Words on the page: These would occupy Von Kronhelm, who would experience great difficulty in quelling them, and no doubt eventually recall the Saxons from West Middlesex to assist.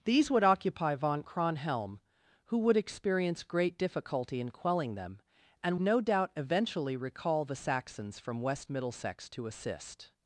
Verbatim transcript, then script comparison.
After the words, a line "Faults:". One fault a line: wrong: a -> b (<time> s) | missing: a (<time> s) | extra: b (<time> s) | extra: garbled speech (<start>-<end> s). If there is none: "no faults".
These would occupy Von Kronhelm, who would experience great difficulty in quelling them, and no doubt eventually recall the Saxons from West Middlesex to assist.
Faults:
no faults